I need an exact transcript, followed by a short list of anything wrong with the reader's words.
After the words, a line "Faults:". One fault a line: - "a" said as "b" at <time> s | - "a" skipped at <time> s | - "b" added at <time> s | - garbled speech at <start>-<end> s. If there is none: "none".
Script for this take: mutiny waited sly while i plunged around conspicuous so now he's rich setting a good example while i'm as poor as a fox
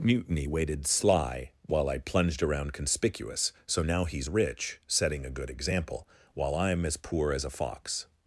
mutiny waited sly while i plunged around conspicuous so now he's rich setting a good example while i'm as poor as a fox
Faults:
none